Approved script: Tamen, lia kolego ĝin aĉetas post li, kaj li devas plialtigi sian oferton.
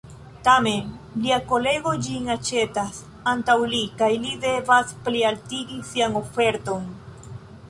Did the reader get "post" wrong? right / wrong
wrong